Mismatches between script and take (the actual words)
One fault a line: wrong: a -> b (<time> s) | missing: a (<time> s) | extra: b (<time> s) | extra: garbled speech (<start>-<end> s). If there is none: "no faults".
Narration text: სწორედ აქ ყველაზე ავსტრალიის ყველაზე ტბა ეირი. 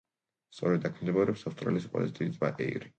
wrong: ყველაზე -> მდებარეობს (1.0 s)
extra: დიდი (2.2 s)